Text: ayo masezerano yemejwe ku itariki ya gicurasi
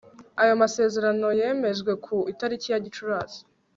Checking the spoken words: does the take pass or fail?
pass